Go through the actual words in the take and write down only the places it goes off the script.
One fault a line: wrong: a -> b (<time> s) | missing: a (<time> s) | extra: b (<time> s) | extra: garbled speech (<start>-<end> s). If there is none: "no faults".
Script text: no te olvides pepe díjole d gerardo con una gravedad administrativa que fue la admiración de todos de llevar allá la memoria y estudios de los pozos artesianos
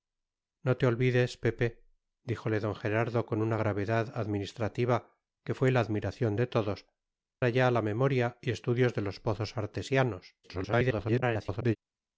missing: de llevar (6.9 s)
extra: garbled speech (10.4-11.8 s)